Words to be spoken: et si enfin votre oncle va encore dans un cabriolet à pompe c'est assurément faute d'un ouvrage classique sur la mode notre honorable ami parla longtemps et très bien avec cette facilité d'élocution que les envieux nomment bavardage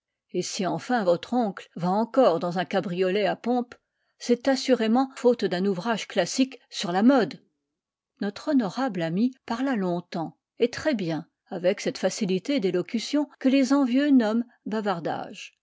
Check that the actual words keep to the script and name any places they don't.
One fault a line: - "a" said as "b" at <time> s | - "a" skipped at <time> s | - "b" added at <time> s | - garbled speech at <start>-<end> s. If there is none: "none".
none